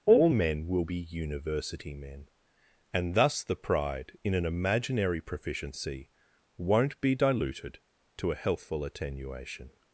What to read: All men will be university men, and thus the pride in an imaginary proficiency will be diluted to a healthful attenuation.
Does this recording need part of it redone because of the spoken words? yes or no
yes